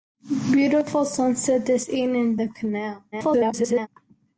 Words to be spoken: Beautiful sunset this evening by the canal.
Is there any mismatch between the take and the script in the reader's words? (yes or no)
yes